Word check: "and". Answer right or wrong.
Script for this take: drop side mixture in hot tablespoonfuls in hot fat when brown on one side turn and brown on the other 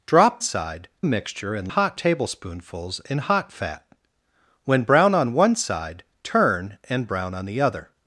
right